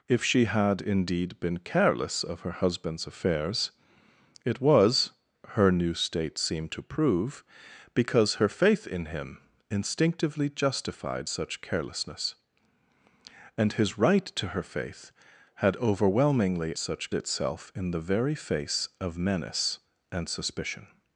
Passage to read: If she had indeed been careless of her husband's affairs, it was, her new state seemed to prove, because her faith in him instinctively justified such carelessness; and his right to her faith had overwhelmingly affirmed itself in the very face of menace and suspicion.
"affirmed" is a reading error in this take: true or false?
true